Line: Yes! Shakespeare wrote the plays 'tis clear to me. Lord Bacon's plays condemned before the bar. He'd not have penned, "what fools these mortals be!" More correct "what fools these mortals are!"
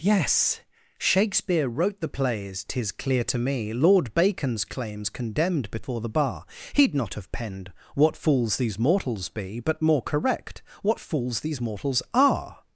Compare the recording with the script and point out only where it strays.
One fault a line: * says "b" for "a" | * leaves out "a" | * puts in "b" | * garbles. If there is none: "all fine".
* says "claim's" for "plays"
* puts in "But"